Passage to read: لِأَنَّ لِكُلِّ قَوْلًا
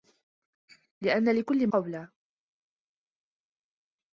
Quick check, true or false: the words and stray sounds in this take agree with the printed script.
true